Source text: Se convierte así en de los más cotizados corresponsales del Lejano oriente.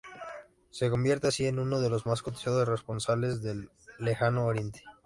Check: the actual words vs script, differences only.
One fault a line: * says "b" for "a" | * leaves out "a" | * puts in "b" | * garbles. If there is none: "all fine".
* puts in "uno"